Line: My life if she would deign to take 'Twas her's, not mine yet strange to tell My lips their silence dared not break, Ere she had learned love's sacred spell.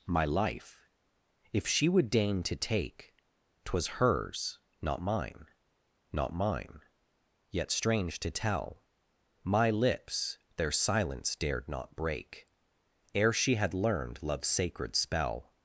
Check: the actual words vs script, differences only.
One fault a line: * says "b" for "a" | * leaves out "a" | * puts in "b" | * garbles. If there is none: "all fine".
* puts in "not mine"